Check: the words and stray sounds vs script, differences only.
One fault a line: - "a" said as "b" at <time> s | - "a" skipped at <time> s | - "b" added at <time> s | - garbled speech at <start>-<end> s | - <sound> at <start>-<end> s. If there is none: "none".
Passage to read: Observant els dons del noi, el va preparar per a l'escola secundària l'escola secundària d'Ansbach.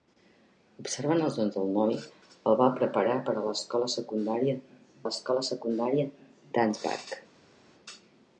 none